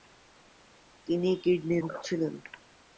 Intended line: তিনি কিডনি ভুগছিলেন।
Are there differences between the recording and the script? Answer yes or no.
no